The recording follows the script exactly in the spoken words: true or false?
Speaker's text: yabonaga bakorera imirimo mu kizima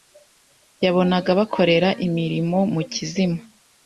true